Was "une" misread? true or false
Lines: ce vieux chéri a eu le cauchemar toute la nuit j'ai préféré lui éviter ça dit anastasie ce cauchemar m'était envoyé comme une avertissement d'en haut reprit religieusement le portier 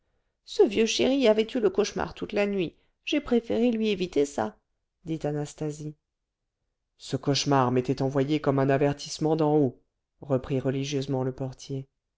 true